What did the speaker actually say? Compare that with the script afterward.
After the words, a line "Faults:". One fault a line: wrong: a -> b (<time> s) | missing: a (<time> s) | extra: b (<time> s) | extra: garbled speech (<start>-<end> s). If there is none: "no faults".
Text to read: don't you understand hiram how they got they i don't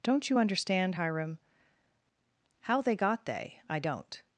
don't you understand hiram how they got they i don't
Faults:
no faults